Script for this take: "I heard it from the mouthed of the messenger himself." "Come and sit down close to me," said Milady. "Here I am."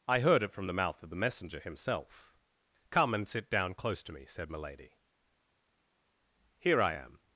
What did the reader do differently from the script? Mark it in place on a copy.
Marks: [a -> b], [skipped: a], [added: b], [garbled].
"I heard it from the [mouthed -> mouth] of the messenger himself." "Come and sit down close to me," said Milady. "Here I am."